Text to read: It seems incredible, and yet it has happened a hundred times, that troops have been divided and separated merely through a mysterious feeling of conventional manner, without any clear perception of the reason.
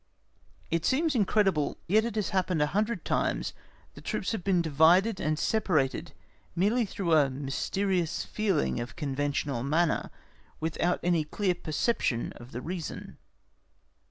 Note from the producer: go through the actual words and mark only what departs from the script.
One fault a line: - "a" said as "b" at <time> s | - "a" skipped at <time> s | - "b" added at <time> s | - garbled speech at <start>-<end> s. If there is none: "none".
- "and" skipped at 1.8 s